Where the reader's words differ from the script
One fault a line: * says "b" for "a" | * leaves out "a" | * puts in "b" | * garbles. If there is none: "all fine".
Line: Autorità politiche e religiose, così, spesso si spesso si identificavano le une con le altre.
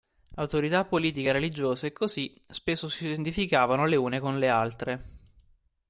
* leaves out "spesso si"